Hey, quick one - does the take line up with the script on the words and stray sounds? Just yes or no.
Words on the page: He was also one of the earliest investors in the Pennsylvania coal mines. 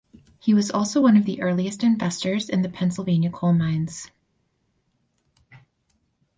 yes